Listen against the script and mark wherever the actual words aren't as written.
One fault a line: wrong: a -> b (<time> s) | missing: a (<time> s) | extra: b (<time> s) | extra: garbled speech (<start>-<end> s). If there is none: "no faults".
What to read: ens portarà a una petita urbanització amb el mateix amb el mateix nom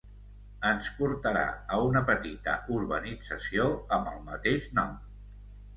missing: amb el mateix (4.7 s)